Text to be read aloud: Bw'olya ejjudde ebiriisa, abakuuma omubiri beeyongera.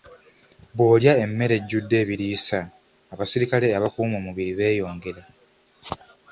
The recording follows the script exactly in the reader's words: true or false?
false